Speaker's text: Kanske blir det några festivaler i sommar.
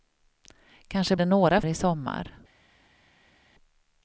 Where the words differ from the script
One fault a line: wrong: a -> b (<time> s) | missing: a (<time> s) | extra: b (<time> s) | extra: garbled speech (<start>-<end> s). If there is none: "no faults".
missing: blir (1.1 s)
missing: festivaler (1.6 s)